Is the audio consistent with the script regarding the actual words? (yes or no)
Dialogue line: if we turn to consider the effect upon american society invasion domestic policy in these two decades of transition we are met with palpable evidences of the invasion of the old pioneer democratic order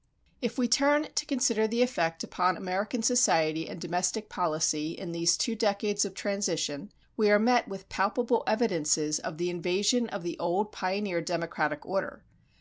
no